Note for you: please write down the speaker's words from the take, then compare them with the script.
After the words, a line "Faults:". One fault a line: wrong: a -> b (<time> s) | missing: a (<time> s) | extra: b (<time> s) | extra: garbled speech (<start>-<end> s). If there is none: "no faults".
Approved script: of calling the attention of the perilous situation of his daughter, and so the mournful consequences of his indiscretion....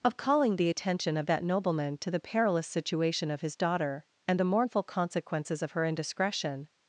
of calling the attention of that nobleman to the perilous situation of his daughter, and the mournful consequences of her indiscretion....
Faults:
extra: that nobleman to (1.3 s)
missing: so (4.4 s)
wrong: his -> her (5.7 s)